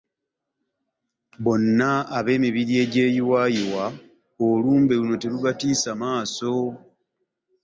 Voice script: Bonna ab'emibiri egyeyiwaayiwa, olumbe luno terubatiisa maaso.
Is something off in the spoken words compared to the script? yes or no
no